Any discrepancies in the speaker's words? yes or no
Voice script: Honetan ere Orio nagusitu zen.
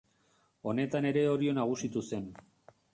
no